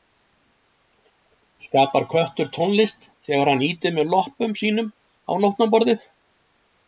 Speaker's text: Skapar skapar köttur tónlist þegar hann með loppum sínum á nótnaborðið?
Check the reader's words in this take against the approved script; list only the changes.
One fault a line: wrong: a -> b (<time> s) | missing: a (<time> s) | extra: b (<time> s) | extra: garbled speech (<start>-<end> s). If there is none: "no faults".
missing: skapar (2.1 s)
extra: ýtir (3.7 s)